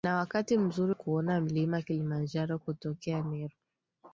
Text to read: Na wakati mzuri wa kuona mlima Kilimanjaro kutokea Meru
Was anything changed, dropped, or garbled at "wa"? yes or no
yes